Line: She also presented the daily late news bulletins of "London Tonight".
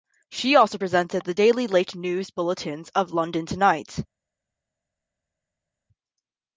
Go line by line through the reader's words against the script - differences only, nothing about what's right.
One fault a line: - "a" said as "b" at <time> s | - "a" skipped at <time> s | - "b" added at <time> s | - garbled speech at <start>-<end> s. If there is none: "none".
none